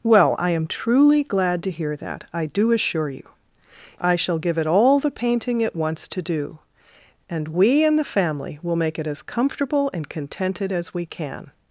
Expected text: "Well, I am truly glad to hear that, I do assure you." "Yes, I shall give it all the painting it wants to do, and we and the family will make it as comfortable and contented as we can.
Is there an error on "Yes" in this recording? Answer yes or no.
yes